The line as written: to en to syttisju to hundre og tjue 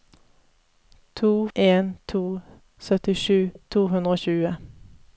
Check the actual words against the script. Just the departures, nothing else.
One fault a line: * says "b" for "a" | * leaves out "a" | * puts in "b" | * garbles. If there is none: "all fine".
all fine